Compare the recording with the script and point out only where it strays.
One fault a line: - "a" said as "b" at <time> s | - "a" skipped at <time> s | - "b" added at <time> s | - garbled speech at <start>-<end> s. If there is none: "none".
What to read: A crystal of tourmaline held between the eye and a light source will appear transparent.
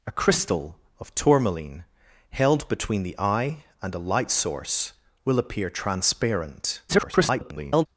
- garbled speech at 6.9-7.9 s